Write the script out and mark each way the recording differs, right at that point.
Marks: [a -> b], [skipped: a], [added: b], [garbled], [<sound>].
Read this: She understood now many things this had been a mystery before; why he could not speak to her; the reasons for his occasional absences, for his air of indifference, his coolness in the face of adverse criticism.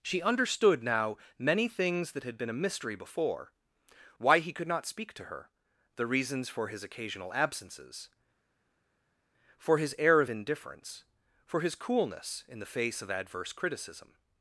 She understood now many things [this -> that] had been a mystery before; why he could not speak to her; the reasons for his occasional absences, for his air of indifference, [added: for] his coolness in the face of adverse criticism.